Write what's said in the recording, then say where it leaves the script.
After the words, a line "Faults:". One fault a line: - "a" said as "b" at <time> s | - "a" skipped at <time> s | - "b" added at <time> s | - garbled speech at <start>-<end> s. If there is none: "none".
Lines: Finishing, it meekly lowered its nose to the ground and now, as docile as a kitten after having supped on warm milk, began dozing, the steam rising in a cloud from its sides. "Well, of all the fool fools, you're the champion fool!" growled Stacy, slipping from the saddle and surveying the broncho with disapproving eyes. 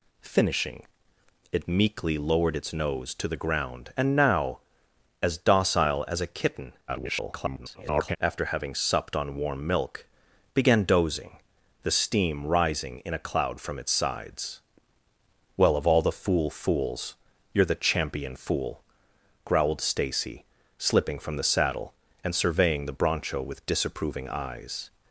Finishing, it meekly lowered its nose to the ground and now, as docile as a kitten [garbled] after having supped on warm milk, began dozing, the steam rising in a cloud from its sides. "Well, of all the fool fools, you're the champion fool!" growled Stacy, slipping from the saddle and surveying the broncho with disapproving eyes.
Faults:
- garbled speech at 6.9-8.2 s